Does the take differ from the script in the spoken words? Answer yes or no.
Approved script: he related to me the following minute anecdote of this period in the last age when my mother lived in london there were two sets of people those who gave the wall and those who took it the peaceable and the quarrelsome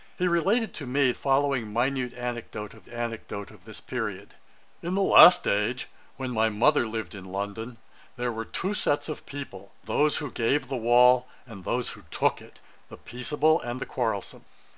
yes